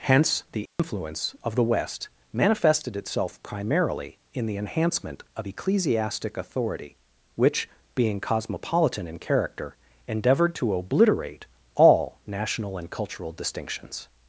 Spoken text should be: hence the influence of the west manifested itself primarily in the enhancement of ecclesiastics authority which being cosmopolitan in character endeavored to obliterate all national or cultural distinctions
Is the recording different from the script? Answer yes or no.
yes